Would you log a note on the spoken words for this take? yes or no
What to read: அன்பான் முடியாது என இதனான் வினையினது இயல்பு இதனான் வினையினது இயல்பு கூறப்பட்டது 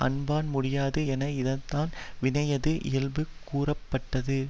yes